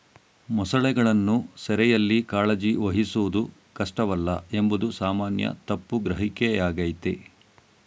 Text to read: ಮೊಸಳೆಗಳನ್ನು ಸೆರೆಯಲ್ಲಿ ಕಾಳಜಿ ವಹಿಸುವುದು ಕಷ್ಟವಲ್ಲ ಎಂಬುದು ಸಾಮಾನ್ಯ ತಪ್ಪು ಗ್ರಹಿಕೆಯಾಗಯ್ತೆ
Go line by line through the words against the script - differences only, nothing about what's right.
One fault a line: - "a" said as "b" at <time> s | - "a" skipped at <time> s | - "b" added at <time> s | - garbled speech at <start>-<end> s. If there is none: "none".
none